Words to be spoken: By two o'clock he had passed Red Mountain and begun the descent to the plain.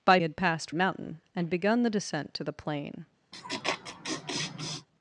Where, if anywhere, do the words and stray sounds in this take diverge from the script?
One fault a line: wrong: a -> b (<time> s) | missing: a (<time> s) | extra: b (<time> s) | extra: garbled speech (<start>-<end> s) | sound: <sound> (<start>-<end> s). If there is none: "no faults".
missing: two o'clock he (0.2 s)
missing: Red (0.7 s)
sound: laugh (3.3-4.9 s)